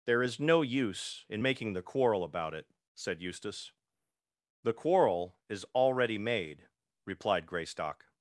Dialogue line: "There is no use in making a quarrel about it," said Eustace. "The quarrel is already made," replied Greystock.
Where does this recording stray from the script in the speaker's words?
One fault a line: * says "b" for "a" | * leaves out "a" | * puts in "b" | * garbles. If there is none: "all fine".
* says "the" for "a"